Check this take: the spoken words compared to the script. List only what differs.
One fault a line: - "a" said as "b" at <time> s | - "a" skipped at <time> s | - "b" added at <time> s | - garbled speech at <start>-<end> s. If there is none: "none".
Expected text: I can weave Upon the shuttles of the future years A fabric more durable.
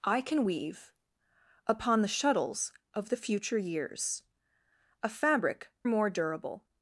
none